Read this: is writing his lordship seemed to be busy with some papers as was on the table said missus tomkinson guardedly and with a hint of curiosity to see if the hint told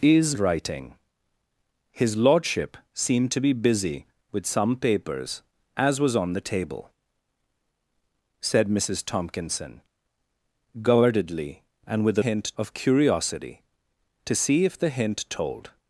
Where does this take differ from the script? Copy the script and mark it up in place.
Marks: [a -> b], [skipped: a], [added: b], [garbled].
is writing his lordship seemed to be busy with some papers as was on the table said missus tomkinson guardedly and with a hint of curiosity to see if the hint told